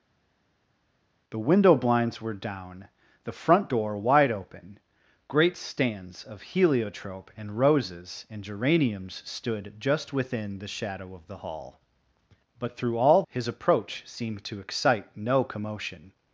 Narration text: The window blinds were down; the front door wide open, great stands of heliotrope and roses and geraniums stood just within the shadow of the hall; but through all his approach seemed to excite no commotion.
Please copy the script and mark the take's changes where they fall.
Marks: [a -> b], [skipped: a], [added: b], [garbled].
The window blinds were down; the front door wide open, great stands of heliotrope and roses and geraniums stood just within the shadow of the hall; but through all his approach seemed to excite no commotion.